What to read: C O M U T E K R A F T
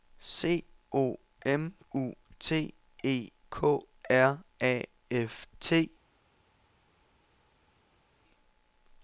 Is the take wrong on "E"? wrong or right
right